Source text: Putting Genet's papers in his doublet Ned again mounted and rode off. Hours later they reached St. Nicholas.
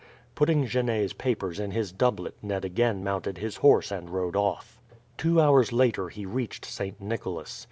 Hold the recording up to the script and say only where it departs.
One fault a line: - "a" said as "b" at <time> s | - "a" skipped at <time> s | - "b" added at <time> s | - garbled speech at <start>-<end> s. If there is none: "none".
- "his horse" added at 3.4 s
- "Two" added at 5.2 s
- "they" said as "he" at 6.1 s